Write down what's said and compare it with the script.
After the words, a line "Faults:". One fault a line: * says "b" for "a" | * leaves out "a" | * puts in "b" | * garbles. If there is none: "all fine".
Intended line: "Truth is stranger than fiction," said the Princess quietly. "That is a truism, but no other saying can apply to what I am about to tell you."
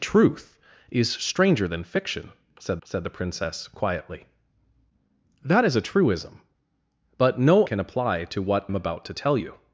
"Truth is stranger than fiction," said said the Princess quietly. "That is a truism, but no can apply to what am about to tell you."
Faults:
* puts in "said"
* leaves out "other saying"
* leaves out "I"